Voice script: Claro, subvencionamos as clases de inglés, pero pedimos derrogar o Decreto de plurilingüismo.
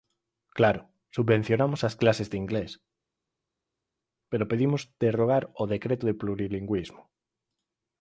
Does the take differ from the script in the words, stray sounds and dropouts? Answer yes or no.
no